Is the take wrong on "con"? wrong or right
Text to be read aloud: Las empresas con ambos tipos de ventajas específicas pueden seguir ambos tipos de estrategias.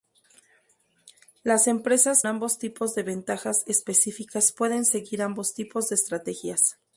wrong